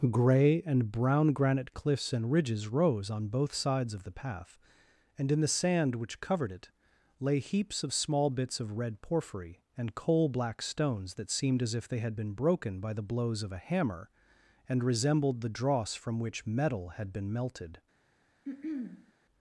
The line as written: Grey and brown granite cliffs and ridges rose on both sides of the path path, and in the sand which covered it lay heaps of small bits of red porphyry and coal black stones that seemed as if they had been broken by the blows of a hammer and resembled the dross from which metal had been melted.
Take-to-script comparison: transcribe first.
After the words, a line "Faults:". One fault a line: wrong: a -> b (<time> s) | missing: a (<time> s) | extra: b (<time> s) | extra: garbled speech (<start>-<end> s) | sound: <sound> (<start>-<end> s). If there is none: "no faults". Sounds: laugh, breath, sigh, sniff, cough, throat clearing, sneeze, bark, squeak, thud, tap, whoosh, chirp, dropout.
Grey and brown granite cliffs and ridges rose on both sides of the path, and in the sand which covered it lay heaps of small bits of red porphyry and coal black stones that seemed as if they had been broken by the blows of a hammer and resembled the dross from which metal had been melted.
Faults:
missing: path (4.6 s)
sound: throat clearing (18.4-19.1 s)